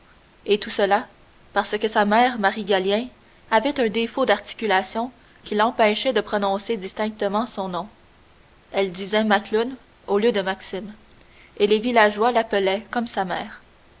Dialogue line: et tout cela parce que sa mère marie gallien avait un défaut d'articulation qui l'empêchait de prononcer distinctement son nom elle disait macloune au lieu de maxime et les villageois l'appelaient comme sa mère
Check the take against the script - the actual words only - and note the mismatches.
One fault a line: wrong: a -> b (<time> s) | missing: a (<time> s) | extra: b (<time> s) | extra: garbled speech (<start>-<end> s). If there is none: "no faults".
no faults